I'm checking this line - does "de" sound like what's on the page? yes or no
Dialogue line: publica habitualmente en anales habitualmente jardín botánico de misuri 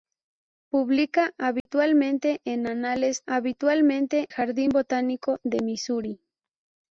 yes